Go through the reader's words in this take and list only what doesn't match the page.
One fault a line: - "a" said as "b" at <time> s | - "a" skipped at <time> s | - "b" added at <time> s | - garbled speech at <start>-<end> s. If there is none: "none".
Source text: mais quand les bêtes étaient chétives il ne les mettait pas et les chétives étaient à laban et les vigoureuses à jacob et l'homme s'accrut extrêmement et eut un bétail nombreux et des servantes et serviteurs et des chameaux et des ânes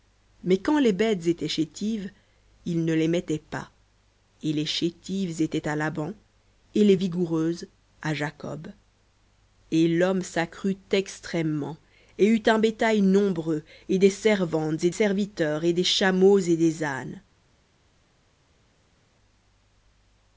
none